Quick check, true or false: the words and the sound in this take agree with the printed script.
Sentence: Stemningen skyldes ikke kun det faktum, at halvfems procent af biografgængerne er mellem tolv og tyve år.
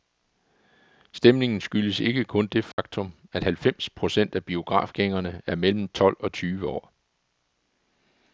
false